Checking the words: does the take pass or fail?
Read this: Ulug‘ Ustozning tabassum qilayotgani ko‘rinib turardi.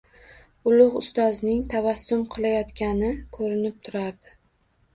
pass